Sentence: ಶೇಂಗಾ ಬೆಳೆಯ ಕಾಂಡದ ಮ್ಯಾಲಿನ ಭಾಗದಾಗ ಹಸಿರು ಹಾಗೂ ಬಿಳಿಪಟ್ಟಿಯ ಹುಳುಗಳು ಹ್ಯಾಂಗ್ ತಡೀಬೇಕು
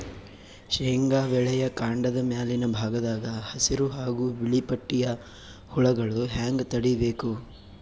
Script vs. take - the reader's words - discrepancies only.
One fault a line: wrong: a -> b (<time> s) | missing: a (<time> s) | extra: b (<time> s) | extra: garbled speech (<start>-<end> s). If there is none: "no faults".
no faults